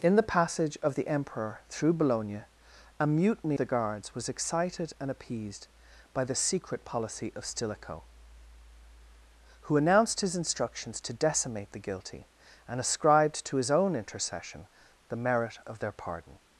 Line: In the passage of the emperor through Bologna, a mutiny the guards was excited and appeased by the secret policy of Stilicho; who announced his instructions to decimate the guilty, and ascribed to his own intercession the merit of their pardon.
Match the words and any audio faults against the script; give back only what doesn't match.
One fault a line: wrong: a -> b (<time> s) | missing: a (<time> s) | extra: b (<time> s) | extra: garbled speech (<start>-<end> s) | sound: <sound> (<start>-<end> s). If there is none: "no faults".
no faults